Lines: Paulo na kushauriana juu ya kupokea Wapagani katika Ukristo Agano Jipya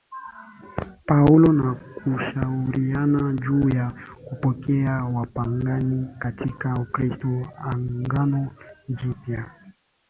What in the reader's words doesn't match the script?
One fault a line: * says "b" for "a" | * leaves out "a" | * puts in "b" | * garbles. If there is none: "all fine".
all fine